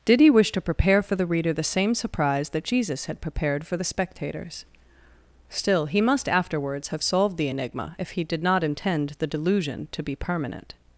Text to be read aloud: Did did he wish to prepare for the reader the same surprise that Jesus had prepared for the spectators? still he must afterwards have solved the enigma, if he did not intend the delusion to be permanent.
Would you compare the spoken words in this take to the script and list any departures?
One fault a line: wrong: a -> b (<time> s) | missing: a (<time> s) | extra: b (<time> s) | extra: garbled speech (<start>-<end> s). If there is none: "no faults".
missing: did (0.2 s)